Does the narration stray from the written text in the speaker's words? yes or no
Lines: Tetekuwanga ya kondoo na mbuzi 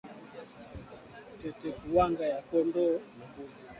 no